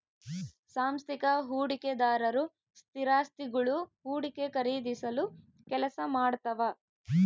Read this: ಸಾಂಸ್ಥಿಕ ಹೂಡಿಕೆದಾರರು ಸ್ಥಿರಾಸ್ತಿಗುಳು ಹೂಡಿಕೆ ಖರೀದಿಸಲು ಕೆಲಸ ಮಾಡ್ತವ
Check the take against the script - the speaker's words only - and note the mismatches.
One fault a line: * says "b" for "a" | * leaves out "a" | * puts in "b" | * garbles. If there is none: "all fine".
all fine